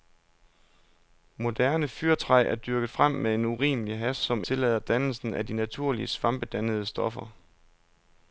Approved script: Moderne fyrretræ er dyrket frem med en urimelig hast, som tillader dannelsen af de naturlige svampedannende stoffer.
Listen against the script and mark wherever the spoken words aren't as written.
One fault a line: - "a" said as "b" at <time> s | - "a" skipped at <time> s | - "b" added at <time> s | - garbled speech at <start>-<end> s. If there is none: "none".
none